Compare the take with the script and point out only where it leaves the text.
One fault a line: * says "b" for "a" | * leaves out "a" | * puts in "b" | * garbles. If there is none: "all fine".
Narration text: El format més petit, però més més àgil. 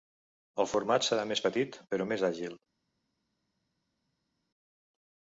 * puts in "serà"
* leaves out "més"